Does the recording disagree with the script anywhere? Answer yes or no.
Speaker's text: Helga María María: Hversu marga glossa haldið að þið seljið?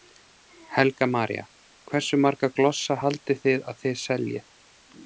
yes